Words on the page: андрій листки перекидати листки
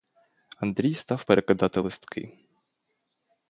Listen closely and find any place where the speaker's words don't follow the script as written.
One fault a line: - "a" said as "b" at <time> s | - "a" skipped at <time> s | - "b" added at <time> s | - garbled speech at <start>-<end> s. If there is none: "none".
- "листки" said as "став" at 0.9 s